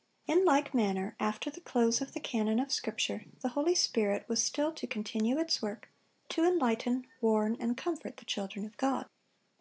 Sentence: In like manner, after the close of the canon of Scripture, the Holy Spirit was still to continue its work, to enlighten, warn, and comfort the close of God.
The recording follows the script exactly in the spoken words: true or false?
false